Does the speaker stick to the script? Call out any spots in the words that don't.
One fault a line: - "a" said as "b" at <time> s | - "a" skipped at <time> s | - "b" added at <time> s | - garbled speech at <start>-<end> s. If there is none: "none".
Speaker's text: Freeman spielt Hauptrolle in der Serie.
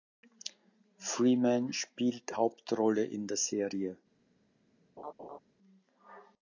none